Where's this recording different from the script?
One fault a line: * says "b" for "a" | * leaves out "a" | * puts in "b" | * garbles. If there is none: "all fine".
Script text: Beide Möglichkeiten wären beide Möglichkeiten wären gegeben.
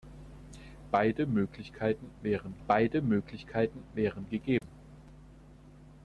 all fine